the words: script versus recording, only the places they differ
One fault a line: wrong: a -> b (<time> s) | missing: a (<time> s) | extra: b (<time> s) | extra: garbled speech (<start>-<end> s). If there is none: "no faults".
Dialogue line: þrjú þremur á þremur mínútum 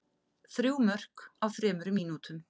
wrong: þremur -> mörk (0.9 s)